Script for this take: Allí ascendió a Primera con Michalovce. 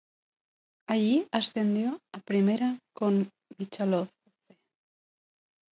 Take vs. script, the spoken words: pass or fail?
pass